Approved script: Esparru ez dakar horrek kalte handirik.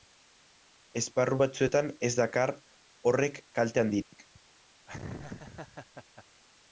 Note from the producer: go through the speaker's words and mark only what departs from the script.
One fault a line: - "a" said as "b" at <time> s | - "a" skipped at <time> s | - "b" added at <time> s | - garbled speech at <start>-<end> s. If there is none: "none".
- "batzuetan" added at 1.4 s